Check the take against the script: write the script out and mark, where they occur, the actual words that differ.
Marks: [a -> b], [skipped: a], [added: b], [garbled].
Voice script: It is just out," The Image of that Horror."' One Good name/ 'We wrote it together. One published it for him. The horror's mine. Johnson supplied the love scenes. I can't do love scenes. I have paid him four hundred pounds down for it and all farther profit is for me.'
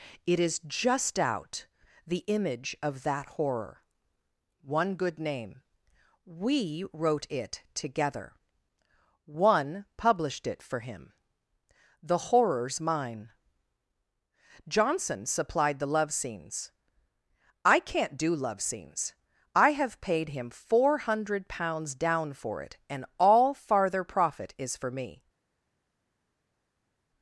It is just out," The Image of that Horror."' One Good name/ 'We wrote it together. One published it for him. The horror's mine. Johnson supplied the love scenes. I can't do love scenes. I have paid him four hundred pounds down for it and all farther profit is for me.'